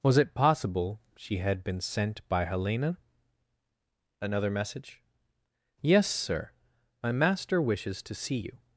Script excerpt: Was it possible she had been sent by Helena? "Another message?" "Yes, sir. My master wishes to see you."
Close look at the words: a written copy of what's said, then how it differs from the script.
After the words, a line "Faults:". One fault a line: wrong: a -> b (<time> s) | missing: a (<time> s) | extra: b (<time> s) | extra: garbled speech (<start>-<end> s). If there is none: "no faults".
Was it possible she had been sent by Helena? "Another message?" "Yes, sir. My master wishes to see you."
Faults:
no faults